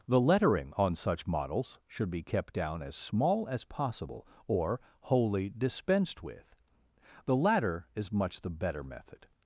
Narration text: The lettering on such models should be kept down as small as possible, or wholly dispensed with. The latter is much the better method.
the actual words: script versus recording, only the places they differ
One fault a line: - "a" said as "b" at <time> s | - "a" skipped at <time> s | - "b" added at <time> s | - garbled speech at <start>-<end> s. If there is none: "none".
none